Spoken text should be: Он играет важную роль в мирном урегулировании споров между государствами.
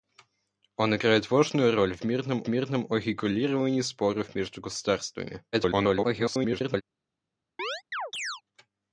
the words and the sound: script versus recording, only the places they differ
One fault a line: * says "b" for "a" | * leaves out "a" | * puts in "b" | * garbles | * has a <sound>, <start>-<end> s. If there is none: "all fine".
* puts in "мирном"
* garbles
* has a chirp, 7.6-8.4 s